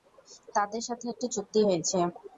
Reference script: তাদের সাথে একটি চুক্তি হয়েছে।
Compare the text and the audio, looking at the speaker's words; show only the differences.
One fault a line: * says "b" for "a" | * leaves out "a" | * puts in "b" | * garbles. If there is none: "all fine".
all fine